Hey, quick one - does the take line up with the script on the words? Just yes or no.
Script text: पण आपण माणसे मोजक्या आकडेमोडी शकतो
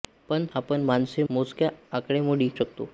yes